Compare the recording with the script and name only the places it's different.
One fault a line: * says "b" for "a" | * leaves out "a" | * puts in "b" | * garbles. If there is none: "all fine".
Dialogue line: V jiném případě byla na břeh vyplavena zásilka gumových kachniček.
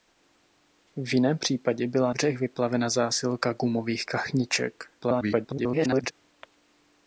* leaves out "na"
* garbles